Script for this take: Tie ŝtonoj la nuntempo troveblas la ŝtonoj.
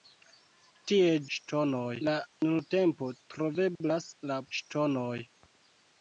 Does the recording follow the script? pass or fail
pass